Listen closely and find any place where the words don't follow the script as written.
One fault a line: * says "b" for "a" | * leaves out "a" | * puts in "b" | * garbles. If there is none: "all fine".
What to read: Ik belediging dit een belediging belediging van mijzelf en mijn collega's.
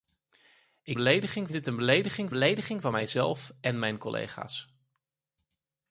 all fine